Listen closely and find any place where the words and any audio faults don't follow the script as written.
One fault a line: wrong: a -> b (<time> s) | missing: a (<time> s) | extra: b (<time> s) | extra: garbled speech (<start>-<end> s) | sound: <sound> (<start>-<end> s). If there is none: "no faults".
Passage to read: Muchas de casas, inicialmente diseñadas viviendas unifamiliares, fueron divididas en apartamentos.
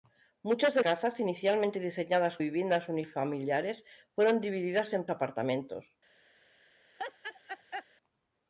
sound: laugh (6.9-7.9 s)